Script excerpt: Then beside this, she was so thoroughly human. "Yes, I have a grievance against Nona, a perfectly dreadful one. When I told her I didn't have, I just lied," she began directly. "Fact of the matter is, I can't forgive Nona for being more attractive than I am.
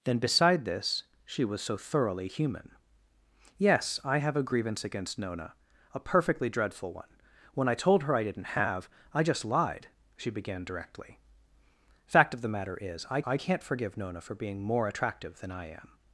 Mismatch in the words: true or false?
true